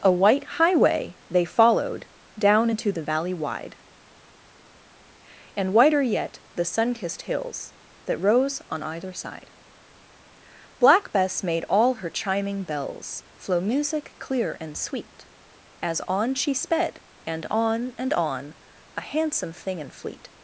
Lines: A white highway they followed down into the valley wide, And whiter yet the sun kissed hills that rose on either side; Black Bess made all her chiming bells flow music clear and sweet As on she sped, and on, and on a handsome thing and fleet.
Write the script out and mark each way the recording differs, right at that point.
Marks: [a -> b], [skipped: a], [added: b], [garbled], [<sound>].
A white highway they followed down into the valley wide, And whiter yet the sun kissed hills that rose on either side; Black Bess made all her chiming bells flow music clear and sweet As on she sped, and on, and on a handsome thing and fleet.